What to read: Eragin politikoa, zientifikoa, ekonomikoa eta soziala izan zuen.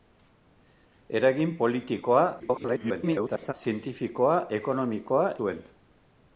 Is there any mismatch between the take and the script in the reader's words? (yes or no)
yes